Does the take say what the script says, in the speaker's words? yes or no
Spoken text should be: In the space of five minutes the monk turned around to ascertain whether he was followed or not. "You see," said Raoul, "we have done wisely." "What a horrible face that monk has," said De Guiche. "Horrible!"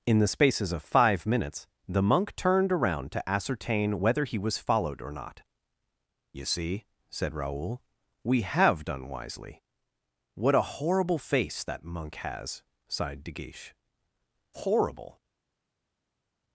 no